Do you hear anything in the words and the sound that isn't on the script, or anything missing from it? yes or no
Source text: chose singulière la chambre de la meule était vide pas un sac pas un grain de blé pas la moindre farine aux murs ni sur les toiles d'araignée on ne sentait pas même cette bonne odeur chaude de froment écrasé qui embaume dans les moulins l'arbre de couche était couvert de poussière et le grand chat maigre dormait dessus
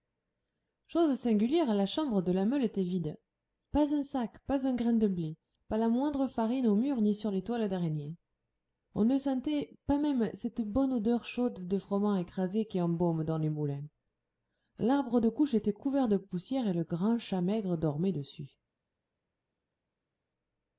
no